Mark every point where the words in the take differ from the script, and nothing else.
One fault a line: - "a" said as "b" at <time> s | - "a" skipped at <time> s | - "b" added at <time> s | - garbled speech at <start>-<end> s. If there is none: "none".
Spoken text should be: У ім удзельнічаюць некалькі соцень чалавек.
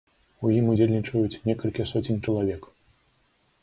none